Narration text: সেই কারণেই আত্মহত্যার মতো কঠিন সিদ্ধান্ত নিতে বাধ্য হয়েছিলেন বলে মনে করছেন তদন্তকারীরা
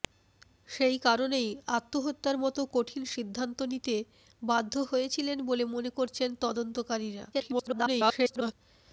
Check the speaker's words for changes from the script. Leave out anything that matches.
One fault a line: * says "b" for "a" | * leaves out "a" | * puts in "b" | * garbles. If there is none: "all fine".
* garbles